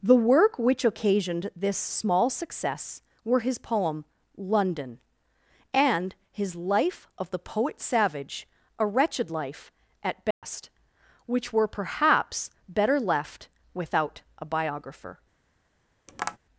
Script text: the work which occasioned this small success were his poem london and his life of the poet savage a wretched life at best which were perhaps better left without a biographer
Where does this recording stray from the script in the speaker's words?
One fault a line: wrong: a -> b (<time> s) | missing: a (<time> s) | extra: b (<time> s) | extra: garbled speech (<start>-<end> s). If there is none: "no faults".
no faults